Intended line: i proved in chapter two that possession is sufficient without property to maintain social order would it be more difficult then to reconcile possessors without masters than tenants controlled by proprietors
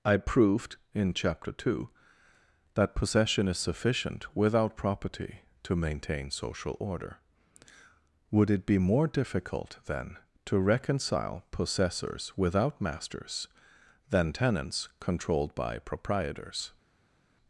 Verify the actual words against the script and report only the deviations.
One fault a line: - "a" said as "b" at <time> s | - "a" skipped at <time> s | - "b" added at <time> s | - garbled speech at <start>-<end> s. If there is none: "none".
none